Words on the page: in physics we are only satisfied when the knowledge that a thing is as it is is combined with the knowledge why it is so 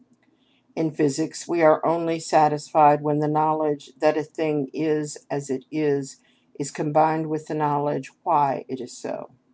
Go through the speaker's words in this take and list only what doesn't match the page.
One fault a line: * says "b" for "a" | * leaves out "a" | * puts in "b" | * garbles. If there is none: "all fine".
all fine